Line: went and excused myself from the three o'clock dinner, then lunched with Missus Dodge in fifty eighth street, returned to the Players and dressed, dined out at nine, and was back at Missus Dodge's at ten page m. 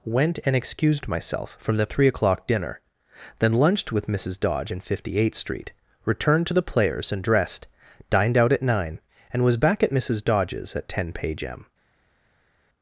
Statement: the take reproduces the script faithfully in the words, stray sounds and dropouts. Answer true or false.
true